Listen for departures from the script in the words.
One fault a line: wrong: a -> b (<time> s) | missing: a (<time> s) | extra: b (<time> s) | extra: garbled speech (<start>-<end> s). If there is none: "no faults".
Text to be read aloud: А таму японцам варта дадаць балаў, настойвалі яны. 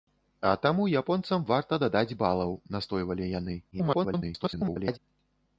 extra: garbled speech (3.7-5.0 s)